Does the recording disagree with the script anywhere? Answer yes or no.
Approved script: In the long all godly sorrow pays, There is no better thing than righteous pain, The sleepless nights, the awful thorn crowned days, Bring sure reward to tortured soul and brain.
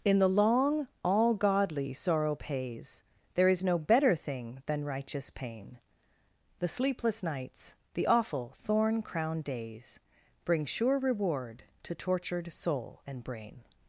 no